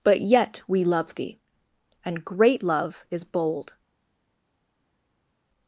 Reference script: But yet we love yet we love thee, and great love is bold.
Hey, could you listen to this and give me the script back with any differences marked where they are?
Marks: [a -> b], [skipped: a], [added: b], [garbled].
But yet we love [skipped: yet we love] thee, and great love is bold.